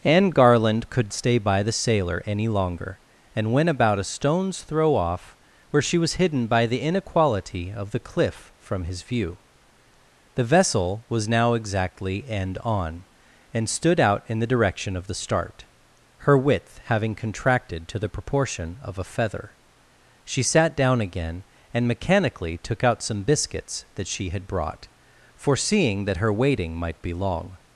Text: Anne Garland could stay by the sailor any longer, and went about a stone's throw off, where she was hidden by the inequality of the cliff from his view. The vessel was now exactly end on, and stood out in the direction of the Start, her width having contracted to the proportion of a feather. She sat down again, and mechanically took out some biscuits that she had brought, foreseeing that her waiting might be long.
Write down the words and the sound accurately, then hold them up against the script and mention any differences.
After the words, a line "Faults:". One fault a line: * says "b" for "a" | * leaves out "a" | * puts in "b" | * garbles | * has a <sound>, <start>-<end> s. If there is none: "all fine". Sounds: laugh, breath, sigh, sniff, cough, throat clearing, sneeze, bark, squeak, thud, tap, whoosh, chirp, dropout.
Anne Garland could stay by the sailor any longer, and went about a stone's throw off, where she was hidden by the inequality of the cliff from his view. The vessel was now exactly end on, and stood out in the direction of the Start, her width having contracted to the proportion of a feather. She sat down again, and mechanically took out some biscuits that she had brought, foreseeing that her waiting might be long.
Faults:
all fine